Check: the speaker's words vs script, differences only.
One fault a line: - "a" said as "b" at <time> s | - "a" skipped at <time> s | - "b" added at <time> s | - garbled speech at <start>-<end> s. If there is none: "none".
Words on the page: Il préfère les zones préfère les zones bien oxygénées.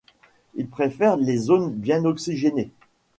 - "préfère les zones" skipped at 1.7 s